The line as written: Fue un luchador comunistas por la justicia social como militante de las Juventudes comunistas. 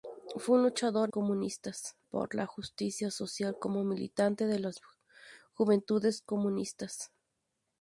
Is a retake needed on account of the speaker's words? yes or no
no